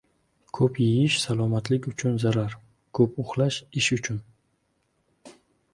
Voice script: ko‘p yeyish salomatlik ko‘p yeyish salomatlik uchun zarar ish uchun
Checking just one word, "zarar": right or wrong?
wrong